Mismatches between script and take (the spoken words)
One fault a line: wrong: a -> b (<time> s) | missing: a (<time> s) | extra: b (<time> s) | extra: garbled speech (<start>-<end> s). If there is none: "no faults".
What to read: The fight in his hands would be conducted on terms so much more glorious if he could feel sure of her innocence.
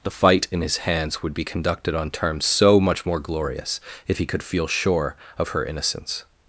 no faults